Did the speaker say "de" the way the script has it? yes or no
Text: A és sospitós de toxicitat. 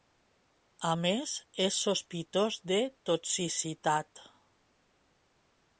yes